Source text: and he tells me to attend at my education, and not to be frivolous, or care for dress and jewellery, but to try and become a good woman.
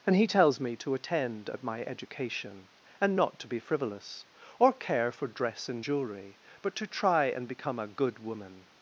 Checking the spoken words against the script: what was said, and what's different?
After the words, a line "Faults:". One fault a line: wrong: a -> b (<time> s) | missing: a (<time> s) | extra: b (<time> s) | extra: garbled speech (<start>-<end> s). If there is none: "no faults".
and he tells me to attend at my education, and not to be frivolous, or care for dress and jewellery, but to try and become a good woman.
Faults:
no faults